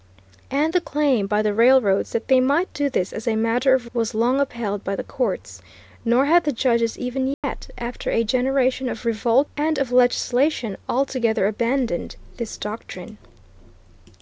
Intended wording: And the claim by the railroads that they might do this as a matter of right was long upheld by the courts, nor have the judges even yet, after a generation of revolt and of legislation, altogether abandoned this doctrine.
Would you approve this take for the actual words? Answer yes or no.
no